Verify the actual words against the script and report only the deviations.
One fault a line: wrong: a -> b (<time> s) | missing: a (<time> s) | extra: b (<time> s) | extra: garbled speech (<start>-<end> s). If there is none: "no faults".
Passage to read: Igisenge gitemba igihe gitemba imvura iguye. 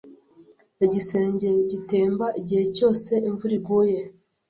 wrong: gitemba -> cyose (2.8 s)